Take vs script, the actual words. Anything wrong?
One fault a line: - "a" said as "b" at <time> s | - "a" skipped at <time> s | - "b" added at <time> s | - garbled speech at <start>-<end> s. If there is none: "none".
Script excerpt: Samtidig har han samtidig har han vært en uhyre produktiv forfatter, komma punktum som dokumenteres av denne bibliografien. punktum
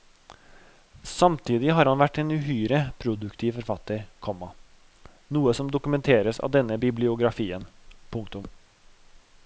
- "samtidig har han" skipped at 2.0 s
- "punktum" said as "noe" at 5.3 s